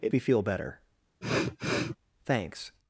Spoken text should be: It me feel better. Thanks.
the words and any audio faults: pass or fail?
fail